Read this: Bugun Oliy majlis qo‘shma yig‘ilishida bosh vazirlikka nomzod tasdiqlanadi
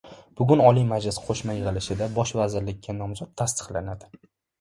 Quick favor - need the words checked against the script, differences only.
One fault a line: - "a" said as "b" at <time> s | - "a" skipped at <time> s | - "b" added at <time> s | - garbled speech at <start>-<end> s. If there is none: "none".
none